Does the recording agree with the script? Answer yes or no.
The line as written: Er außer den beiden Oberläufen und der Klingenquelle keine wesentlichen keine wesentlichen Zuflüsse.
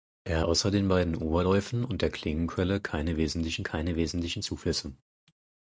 yes